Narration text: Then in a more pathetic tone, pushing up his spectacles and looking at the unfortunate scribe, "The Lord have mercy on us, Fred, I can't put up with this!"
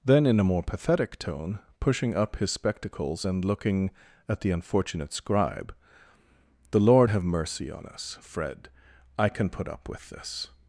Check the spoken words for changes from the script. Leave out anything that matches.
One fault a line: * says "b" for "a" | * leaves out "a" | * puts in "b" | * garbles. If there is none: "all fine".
* says "can" for "can't"